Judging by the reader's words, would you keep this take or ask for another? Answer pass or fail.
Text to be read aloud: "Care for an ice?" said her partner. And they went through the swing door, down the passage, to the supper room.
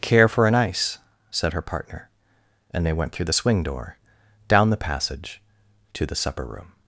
pass